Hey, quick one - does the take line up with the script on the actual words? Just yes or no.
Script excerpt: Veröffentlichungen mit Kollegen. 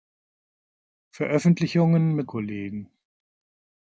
yes